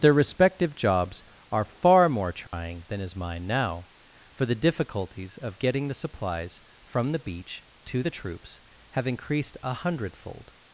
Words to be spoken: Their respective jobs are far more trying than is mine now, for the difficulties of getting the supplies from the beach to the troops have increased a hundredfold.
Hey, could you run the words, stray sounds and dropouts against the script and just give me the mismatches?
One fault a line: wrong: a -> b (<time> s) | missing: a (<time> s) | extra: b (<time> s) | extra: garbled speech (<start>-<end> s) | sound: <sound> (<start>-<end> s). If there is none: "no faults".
sound: dropout (2.5-2.5 s)